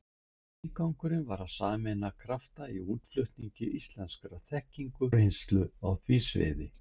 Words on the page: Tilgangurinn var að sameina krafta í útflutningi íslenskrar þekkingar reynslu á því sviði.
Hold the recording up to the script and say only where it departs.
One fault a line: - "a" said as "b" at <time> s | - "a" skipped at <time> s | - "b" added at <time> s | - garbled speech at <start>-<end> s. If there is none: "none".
none